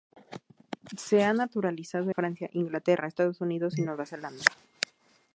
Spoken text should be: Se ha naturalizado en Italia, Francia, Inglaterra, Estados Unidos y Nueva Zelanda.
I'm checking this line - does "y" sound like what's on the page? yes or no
yes